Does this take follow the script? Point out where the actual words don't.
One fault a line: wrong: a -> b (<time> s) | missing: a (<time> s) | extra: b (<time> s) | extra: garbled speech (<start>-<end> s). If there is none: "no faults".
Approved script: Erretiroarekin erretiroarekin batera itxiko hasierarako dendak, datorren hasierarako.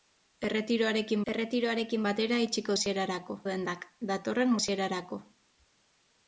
no faults